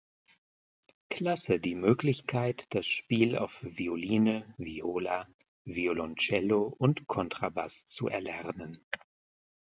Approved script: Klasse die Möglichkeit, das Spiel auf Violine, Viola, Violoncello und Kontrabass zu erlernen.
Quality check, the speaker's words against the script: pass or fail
pass